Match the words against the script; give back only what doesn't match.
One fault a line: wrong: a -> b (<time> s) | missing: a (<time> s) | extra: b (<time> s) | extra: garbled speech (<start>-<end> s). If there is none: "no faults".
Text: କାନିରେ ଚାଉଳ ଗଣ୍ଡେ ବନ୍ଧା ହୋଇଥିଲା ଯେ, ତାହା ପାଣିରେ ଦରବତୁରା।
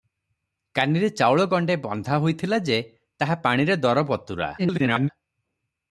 extra: garbled speech (4.6-5.1 s)